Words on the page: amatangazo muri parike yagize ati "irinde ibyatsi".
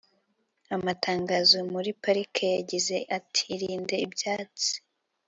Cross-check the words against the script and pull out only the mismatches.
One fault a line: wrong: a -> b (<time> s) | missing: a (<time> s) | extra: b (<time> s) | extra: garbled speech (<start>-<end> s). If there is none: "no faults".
no faults